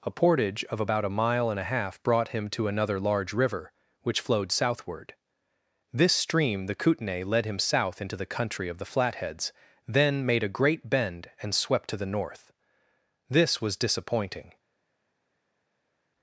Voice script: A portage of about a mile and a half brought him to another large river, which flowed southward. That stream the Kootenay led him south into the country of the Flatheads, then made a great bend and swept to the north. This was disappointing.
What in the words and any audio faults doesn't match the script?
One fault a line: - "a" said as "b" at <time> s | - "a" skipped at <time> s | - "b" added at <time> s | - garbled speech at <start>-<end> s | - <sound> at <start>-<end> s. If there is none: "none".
- "That" said as "This" at 5.9 s